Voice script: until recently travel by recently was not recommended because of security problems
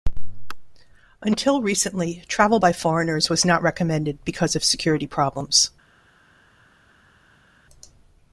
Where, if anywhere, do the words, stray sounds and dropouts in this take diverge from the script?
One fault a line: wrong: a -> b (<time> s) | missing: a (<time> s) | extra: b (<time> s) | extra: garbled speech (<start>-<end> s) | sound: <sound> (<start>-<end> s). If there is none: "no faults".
wrong: recently -> foreigners (2.7 s)